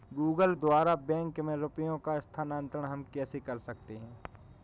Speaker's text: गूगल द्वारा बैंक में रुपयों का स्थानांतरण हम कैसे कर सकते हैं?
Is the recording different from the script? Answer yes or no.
no